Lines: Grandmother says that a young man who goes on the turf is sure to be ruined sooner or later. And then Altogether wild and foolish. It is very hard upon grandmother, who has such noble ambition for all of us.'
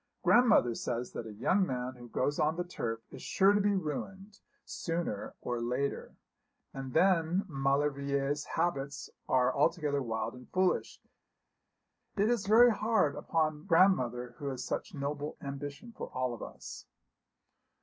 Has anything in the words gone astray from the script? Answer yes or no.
yes